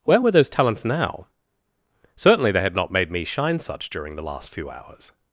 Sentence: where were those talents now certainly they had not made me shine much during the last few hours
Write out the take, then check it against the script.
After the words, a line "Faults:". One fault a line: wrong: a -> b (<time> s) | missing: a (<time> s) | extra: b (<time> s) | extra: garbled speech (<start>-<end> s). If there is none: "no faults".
where were those talents now certainly they had not made me shine such during the last few hours
Faults:
wrong: much -> such (3.6 s)